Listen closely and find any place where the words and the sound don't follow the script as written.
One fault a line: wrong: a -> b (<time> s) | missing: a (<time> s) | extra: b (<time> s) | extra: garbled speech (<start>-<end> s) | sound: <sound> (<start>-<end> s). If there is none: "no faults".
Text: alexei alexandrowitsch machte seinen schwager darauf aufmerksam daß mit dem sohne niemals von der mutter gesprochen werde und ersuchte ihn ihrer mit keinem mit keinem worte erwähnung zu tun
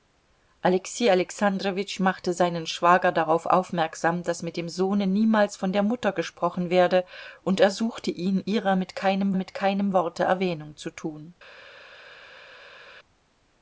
no faults